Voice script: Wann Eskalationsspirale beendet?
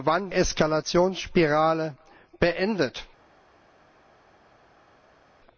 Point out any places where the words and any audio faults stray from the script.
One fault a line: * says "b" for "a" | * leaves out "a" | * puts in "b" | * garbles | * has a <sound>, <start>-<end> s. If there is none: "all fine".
all fine